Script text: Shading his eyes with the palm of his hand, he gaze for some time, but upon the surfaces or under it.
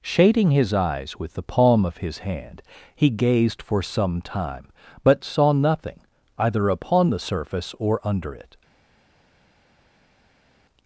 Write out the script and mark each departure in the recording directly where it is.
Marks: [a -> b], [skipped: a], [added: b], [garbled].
Shading his eyes with the palm of his hand, he [gaze -> gazed] for some time, but [added: saw nothing either] upon the [surfaces -> surface] or under it.